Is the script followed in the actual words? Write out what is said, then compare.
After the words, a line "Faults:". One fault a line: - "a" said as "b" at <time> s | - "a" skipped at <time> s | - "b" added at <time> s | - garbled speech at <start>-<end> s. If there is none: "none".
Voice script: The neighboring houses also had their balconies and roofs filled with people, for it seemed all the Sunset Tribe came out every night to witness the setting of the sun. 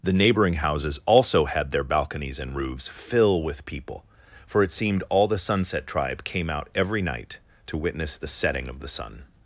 The neighboring houses also had their balconies and roofs fill with people, for it seemed all the Sunset Tribe came out every night to witness the setting of the sun.
Faults:
- "filled" said as "fill" at 2.9 s